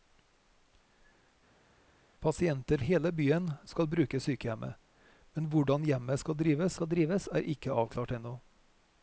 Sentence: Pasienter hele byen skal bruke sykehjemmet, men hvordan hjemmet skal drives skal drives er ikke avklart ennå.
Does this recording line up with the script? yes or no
yes